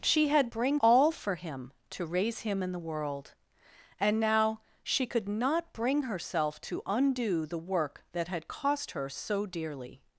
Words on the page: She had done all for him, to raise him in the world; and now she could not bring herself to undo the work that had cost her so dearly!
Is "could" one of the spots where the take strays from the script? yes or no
no